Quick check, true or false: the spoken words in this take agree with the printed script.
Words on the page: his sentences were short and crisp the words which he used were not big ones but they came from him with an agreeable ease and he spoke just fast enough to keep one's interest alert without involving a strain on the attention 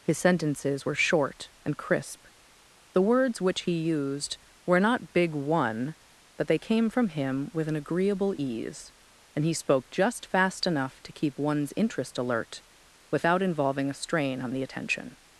false